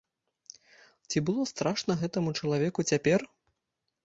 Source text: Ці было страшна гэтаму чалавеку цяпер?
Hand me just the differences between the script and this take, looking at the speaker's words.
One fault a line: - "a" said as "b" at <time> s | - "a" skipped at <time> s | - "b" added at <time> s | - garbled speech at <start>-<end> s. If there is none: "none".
none